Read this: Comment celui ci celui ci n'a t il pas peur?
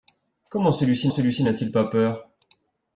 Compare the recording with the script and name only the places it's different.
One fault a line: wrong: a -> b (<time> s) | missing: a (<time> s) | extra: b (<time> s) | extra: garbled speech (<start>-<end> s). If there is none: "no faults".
no faults